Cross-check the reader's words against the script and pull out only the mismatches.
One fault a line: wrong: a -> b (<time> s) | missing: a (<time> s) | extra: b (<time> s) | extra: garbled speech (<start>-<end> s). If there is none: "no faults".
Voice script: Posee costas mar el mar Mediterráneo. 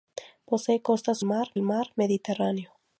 no faults